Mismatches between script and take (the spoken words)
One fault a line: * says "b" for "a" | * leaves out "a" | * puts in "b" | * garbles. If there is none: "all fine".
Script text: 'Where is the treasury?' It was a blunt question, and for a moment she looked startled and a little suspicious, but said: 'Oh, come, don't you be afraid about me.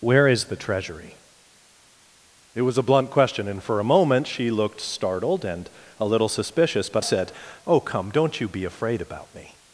all fine